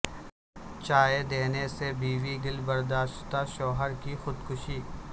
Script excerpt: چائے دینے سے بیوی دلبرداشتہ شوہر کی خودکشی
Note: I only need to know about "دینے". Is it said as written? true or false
true